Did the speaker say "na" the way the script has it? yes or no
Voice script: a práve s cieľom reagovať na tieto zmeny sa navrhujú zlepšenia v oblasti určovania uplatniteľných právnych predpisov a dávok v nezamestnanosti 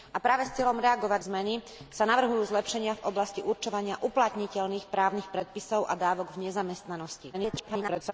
no